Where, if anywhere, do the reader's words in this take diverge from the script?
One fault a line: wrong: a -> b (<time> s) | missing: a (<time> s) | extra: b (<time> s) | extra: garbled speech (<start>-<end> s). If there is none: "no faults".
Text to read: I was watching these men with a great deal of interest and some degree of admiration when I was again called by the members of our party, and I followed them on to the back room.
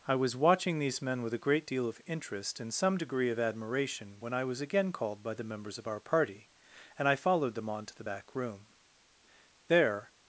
extra: There (9.7 s)